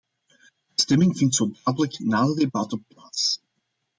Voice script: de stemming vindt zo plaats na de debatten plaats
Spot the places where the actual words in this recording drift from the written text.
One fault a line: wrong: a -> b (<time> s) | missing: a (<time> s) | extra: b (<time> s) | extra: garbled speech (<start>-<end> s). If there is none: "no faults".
wrong: plaats -> dadelijk (1.6 s)